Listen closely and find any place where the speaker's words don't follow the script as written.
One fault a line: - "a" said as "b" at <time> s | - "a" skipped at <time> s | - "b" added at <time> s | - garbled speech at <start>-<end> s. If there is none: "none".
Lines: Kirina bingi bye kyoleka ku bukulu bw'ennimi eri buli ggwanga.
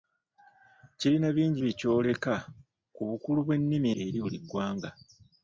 none